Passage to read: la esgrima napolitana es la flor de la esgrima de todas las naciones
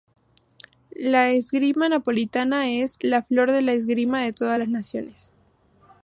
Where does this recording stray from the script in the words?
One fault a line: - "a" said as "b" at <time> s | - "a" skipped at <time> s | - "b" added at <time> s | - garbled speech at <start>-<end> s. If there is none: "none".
none